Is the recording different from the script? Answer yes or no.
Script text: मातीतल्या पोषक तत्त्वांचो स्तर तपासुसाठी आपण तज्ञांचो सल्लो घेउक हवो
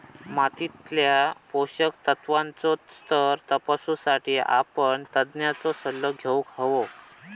no